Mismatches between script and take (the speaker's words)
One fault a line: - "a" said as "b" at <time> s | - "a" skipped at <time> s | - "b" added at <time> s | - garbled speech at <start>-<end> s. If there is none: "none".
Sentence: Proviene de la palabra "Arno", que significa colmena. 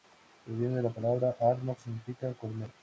- "que" skipped at 1.8 s